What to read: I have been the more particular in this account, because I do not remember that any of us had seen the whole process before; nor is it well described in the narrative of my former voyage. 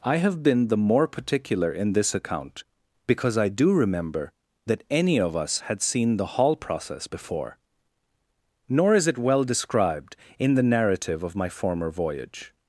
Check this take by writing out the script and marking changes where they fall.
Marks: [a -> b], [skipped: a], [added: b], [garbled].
I have been the more particular in this account, because I do [skipped: not] remember that any of us had seen the [whole -> hall] process before; nor is it well described in the narrative of my former voyage.